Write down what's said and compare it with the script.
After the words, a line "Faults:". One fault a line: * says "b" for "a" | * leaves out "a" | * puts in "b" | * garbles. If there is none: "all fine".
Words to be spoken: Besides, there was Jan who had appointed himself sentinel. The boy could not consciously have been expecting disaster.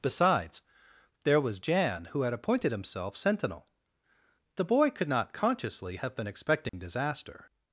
Besides, there was Jan who had appointed himself sentinel. The boy could not consciously have been expecting disaster.
Faults:
all fine